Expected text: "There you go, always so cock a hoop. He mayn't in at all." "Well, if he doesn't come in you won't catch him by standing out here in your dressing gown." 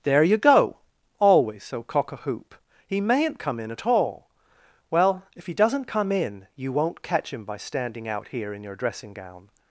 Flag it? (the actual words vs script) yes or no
yes